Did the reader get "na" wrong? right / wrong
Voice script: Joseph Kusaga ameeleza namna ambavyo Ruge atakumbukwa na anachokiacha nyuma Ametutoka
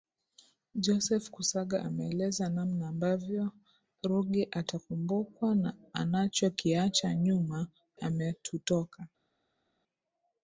right